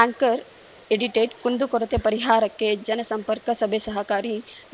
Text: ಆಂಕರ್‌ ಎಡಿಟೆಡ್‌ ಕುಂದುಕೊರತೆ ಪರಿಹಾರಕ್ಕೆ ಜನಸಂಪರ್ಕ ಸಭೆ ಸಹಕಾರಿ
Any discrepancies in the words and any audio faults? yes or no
no